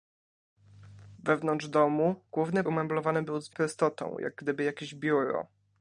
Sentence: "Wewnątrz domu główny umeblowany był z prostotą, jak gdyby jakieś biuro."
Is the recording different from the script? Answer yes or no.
no